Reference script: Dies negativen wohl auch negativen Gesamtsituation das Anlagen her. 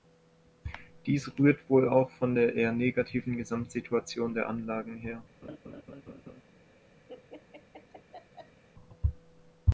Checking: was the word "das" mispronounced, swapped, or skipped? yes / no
yes